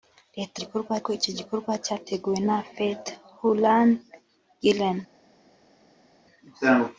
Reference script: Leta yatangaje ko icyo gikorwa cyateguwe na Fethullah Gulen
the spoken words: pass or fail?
fail